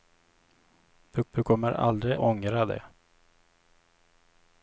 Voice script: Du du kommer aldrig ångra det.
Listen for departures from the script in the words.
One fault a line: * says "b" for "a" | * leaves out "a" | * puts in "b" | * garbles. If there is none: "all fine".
all fine